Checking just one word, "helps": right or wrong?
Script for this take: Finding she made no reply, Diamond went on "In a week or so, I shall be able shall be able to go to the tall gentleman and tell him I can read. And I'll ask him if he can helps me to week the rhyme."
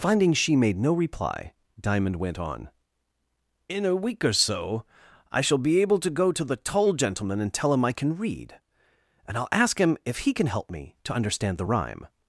wrong